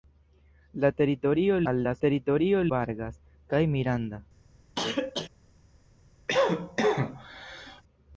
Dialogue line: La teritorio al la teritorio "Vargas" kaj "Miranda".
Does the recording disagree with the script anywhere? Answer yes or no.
no